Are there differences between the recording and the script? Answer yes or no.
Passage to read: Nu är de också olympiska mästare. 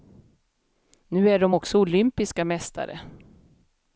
no